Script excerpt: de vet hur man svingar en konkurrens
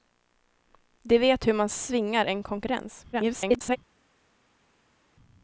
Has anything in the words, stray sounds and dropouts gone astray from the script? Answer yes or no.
yes